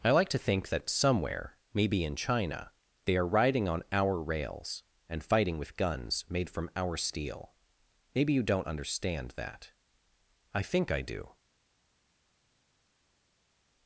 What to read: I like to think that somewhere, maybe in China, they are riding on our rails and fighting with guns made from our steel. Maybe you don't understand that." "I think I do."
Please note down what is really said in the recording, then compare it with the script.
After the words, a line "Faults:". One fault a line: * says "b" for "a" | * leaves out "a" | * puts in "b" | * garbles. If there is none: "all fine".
I like to think that somewhere, maybe in China, they are riding on our rails and fighting with guns made from our steel. Maybe you don't understand that." "I think I do."
Faults:
all fine